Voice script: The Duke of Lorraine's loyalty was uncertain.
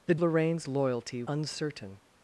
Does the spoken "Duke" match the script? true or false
false